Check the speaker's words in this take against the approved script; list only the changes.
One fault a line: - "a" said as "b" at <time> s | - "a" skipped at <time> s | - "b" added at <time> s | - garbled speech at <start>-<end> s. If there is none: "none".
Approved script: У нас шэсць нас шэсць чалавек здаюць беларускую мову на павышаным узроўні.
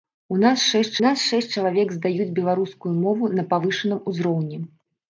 none